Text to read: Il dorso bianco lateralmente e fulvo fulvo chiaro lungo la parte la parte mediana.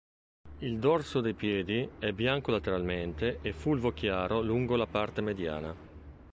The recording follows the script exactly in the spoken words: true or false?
false